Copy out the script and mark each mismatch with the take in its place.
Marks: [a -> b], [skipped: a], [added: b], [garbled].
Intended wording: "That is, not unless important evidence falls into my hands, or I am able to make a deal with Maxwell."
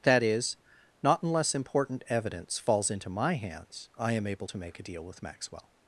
"That is, not unless important evidence falls into my hands, [skipped: or] I am able to make a deal with Maxwell."